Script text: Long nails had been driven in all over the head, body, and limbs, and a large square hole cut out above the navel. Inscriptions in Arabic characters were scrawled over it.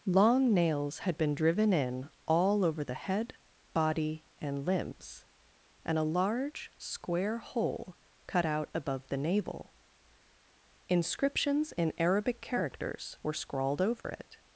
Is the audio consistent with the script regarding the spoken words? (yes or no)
yes